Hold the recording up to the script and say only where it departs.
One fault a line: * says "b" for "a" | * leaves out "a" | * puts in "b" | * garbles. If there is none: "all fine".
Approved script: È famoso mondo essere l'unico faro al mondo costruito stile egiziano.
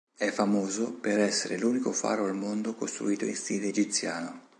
* says "per" for "mondo"
* puts in "in"